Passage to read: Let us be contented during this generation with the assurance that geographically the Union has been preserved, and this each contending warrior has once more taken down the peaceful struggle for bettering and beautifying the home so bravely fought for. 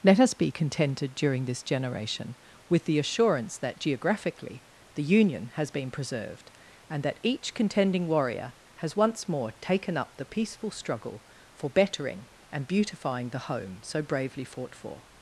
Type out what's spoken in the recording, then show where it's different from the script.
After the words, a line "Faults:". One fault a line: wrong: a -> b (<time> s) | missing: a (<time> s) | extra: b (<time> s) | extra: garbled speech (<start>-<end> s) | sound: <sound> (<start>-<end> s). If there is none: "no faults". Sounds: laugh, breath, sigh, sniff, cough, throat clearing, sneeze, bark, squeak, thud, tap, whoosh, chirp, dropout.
Let us be contented during this generation with the assurance that geographically the Union has been preserved, and that each contending warrior has once more taken up the peaceful struggle for bettering and beautifying the home so bravely fought for.
Faults:
wrong: this -> that (7.0 s)
wrong: down -> up (10.0 s)